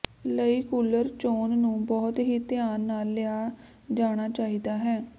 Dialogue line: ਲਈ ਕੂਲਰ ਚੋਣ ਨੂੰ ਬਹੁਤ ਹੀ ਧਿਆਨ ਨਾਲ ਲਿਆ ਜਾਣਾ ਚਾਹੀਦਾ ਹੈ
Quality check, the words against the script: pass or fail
pass